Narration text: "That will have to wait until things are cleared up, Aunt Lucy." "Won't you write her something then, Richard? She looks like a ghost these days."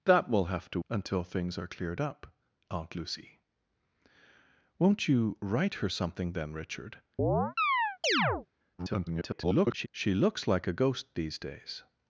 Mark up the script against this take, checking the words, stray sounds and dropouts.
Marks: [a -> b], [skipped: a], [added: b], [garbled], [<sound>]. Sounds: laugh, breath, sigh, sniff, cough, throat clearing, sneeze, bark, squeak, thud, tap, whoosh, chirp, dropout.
"That will have to [skipped: wait] until things are cleared up, Aunt Lucy." "Won't you write her something then, Richard? [chirp] [garbled] She looks like a ghost these days."